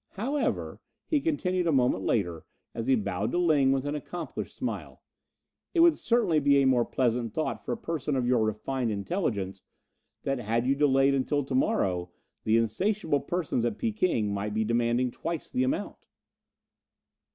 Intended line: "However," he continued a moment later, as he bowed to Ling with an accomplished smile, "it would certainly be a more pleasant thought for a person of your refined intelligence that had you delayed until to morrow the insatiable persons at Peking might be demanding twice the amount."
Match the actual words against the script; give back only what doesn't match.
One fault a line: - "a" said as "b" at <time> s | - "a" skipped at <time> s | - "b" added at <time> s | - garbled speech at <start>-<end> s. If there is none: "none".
none